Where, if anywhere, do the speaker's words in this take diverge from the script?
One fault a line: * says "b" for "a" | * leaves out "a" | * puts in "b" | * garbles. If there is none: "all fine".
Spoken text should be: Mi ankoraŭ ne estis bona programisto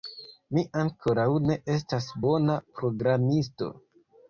* says "estas" for "estis"